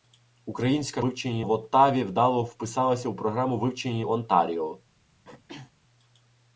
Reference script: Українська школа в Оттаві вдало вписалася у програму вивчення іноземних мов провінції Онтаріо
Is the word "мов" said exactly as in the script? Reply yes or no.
no